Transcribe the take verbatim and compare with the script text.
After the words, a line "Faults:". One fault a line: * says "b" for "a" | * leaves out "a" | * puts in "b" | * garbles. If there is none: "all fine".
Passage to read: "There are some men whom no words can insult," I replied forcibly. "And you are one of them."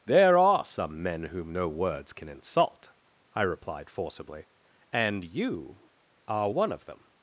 "There are some men whom no words can insult," I replied forcibly. "And you are one of them."
Faults:
all fine